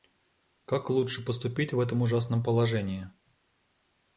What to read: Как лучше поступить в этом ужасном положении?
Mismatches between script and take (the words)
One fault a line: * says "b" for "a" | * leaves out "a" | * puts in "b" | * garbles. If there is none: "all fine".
all fine